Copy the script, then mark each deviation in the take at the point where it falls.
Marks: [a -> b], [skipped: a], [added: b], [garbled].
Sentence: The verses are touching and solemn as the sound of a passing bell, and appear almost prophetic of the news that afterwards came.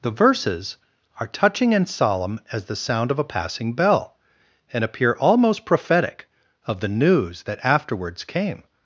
The verses are touching and solemn as the sound of a passing bell, and appear almost prophetic of the news that afterwards came.